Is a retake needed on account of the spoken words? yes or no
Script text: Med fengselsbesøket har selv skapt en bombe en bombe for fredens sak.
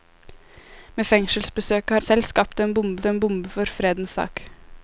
no